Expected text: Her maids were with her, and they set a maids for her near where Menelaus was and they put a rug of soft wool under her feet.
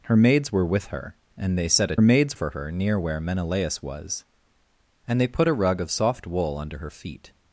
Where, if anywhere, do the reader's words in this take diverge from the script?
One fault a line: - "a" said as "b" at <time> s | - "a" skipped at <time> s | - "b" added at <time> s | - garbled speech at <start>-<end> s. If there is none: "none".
none